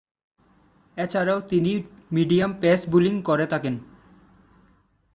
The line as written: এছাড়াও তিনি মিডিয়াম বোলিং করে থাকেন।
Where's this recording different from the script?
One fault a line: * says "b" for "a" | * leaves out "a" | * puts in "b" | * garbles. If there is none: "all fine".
* puts in "পেস"